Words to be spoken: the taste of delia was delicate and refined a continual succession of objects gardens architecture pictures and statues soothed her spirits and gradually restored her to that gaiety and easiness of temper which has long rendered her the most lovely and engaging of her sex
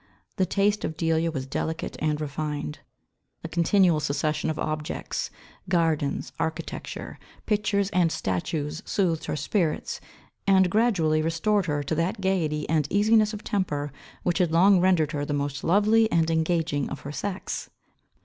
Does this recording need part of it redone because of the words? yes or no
yes